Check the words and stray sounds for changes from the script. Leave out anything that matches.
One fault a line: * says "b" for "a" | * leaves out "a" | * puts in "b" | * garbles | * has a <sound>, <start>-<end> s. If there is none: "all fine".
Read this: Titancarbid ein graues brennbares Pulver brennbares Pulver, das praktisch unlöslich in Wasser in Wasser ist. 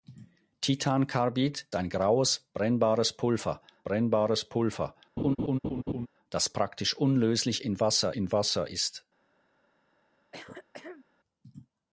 * has a laugh, 5.2-6.1 s
* has a throat clearing, 10.3-11.1 s